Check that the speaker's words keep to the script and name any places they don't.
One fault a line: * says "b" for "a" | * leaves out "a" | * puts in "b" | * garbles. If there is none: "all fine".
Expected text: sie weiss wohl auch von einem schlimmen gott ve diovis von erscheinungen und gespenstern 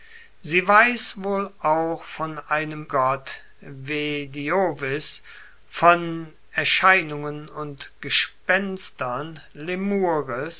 * leaves out "schlimmen"